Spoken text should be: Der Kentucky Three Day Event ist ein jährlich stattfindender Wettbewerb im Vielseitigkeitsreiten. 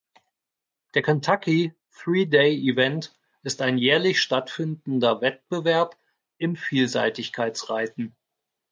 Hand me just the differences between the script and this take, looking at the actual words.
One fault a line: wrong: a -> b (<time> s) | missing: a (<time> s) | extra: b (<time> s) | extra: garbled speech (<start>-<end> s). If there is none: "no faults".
no faults